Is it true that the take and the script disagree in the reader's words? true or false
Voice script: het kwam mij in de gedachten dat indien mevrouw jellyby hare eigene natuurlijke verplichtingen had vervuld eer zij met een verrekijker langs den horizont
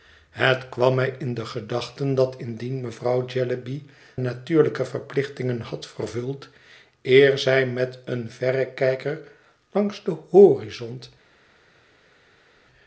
true